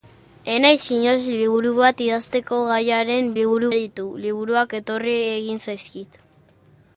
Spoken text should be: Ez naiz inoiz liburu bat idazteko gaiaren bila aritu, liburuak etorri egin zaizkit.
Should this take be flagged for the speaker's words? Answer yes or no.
yes